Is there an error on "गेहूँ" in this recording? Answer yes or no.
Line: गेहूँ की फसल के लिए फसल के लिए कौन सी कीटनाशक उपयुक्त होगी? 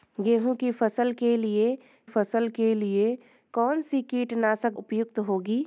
no